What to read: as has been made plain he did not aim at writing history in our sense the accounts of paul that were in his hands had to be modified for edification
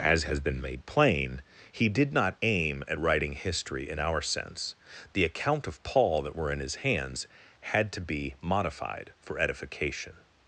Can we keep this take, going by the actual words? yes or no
no